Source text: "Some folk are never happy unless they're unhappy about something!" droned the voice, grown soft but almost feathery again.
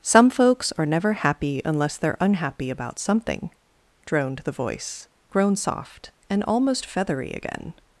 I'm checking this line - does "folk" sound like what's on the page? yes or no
no